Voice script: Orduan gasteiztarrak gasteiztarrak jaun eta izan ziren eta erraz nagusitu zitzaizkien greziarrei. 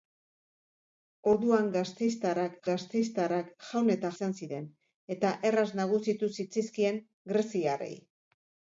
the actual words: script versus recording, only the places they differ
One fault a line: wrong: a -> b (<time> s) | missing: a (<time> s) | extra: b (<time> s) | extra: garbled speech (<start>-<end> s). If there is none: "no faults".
no faults